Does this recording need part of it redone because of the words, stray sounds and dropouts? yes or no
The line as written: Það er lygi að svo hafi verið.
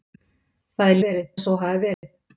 yes